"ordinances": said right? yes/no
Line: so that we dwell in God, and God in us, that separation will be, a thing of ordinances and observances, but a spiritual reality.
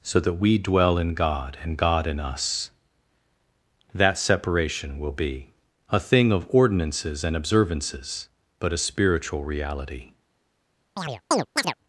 yes